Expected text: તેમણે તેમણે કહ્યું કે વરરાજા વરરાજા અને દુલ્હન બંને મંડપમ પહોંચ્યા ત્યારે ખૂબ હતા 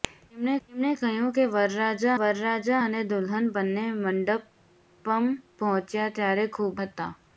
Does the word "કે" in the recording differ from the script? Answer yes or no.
no